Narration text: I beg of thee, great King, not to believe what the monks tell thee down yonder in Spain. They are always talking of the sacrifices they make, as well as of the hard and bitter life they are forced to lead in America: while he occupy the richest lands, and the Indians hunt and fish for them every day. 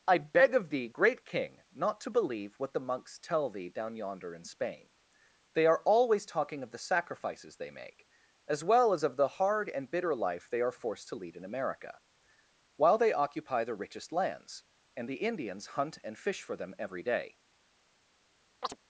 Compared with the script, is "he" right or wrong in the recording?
wrong